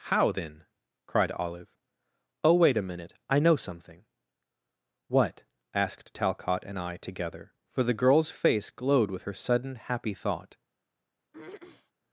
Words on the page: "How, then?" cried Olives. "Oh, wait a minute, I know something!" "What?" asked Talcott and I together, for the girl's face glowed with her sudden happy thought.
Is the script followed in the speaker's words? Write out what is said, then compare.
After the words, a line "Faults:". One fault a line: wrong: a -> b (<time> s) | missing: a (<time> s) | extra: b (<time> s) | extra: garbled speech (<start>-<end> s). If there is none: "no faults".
"How, then?" cried Olive. "Oh, wait a minute, I know something!" "What?" asked Talcott and I together, for the girl's face glowed with her sudden happy thought.
Faults:
wrong: Olives -> Olive (1.3 s)